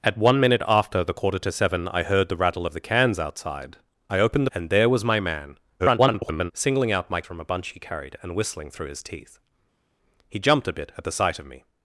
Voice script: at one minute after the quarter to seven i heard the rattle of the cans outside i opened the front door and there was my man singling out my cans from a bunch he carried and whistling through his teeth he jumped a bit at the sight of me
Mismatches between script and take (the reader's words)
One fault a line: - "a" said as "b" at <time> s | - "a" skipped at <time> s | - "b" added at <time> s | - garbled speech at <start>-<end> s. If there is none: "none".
- "the front door" skipped at 4.5 s
- garbled speech at 5.8-6.5 s
- "cans" skipped at 7.2 s